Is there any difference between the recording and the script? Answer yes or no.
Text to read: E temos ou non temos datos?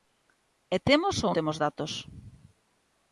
yes